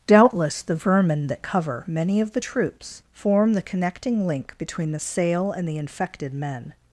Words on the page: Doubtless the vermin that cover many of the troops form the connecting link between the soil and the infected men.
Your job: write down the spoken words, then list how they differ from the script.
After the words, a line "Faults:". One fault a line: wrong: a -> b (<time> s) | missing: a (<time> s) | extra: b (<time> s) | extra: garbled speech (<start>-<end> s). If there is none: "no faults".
Doubtless the vermin that cover many of the troops form the connecting link between the sail and the infected men.
Faults:
wrong: soil -> sail (5.0 s)